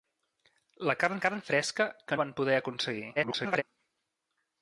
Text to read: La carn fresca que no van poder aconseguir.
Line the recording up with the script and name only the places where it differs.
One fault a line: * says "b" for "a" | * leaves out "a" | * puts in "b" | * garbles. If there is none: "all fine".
* puts in "carn"
* leaves out "no"
* garbles